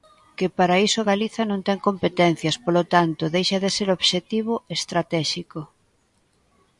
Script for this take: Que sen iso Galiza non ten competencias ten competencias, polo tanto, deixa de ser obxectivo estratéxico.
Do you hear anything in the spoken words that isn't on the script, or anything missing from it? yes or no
yes